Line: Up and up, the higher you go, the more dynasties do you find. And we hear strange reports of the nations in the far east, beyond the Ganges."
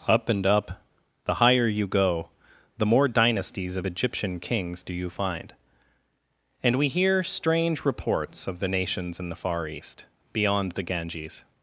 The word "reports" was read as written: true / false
true